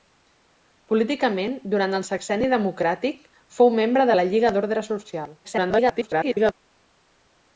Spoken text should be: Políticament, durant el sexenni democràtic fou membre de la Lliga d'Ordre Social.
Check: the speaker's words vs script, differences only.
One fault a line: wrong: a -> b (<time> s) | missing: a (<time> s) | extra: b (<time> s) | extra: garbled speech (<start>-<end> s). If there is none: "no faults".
extra: garbled speech (5.4-6.5 s)